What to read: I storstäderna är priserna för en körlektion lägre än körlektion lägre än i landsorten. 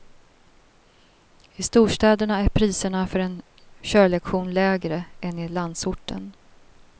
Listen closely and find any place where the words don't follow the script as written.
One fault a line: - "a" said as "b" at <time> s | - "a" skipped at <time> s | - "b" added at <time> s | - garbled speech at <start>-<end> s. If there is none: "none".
- "körlektion lägre än" skipped at 5.4 s